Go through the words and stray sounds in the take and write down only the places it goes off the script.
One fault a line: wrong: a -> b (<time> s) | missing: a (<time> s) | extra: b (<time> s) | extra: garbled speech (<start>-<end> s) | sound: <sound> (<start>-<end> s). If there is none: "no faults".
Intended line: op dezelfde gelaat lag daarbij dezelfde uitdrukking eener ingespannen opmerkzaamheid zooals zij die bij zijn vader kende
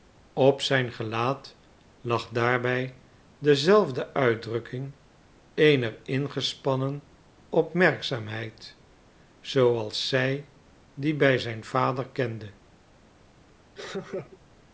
wrong: dezelfde -> zijn (0.6 s)
sound: laugh (13.8-14.4 s)